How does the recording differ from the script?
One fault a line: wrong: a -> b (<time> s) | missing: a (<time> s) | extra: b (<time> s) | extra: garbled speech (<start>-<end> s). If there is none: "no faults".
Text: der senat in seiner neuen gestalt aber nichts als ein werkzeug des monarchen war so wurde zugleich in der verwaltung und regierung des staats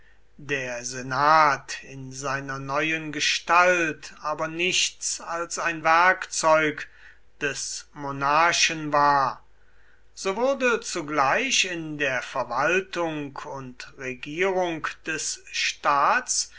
no faults